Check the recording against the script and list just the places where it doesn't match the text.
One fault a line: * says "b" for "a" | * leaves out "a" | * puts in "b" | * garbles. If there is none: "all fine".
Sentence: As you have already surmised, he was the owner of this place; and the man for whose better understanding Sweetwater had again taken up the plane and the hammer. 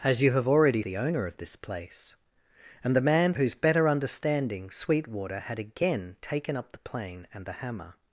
* leaves out "surmised he was"
* leaves out "for"